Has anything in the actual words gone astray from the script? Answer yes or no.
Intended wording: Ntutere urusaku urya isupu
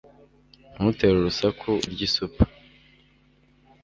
no